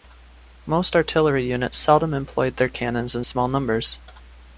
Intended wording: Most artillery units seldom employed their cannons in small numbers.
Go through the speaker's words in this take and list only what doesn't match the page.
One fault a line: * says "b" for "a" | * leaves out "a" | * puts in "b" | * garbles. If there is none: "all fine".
all fine